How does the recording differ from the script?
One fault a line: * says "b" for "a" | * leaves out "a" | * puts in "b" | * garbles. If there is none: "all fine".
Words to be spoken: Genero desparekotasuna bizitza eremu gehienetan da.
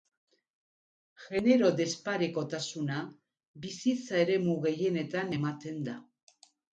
* puts in "ematen"